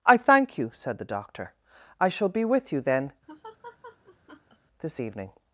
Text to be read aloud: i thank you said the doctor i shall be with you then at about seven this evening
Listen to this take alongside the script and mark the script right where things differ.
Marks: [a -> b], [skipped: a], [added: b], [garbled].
i thank you said the doctor i shall be with you then [skipped: at about seven] this evening